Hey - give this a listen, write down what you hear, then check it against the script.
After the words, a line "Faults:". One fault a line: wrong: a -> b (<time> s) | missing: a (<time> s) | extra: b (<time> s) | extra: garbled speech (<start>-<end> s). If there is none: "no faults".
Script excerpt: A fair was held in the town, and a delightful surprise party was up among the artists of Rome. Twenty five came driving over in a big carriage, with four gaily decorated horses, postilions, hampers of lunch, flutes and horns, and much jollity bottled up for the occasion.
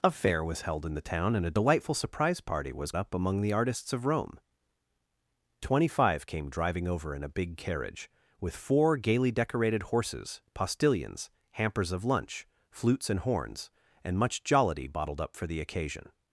A fair was held in the town, and a delightful surprise party was up among the artists of Rome. Twenty five came driving over in a big carriage, with four gaily decorated horses, postilions, hampers of lunch, flutes and horns, and much jollity bottled up for the occasion.
Faults:
no faults